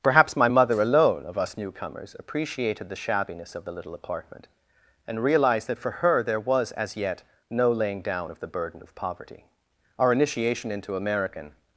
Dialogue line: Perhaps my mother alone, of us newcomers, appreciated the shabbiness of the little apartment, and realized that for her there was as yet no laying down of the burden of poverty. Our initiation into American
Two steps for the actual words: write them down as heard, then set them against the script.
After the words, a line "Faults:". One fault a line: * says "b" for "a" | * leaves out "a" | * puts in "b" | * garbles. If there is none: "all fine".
Perhaps my mother alone, of us newcomers, appreciated the shabbiness of the little apartment, and realized that for her there was as yet no laying down of the burden of poverty. Our initiation into American
Faults:
all fine